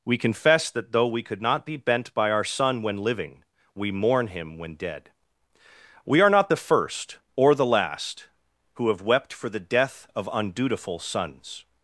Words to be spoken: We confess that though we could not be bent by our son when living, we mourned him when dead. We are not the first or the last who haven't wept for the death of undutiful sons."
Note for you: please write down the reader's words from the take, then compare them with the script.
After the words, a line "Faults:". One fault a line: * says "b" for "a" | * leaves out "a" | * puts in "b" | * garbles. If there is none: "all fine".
We confess that though we could not be bent by our son when living, we mourn him when dead. We are not the first or the last who have wept for the death of undutiful sons."
Faults:
* says "mourn" for "mourned"
* says "have" for "haven't"